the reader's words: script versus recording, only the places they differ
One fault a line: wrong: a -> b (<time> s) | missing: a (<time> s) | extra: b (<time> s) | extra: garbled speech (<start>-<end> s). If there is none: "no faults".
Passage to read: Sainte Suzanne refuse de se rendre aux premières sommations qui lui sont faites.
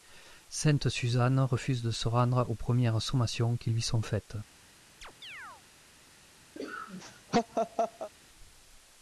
no faults